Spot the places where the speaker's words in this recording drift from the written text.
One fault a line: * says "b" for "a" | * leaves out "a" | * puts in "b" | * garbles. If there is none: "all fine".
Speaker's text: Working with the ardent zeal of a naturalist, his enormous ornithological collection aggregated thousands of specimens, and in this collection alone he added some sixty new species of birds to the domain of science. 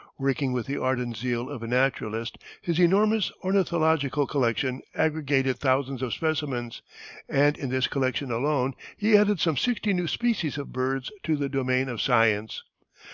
all fine